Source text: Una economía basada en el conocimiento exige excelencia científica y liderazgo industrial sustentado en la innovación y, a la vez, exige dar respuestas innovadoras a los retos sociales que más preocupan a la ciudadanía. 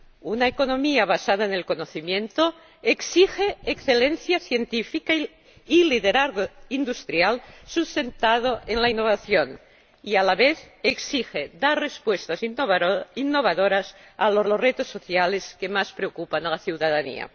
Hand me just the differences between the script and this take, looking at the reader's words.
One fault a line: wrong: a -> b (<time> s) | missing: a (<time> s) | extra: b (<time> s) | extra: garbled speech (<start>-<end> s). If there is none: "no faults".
extra: los (14.4 s)